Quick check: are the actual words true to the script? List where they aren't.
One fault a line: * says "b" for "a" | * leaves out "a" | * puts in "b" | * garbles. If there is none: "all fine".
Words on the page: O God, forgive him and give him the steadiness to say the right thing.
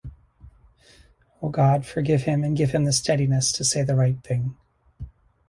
all fine